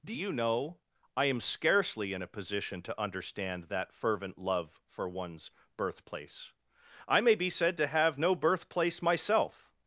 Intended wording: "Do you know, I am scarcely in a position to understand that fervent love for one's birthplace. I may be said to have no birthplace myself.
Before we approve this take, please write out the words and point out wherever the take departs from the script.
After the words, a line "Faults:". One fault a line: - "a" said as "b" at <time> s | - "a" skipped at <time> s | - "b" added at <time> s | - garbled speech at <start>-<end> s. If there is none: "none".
"Do you know, I am scarcely in a position to understand that fervent love for one's birthplace. I may be said to have no birthplace myself.
Faults:
none